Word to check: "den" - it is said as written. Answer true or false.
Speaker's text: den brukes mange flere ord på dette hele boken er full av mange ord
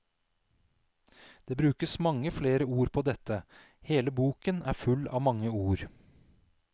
false